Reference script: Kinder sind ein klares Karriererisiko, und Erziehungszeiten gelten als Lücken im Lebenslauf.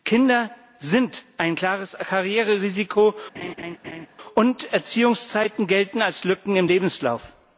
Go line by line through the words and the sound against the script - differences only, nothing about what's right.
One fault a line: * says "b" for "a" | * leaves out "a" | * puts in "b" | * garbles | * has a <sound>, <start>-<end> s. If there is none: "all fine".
* has a laugh, 3.3-4.1 s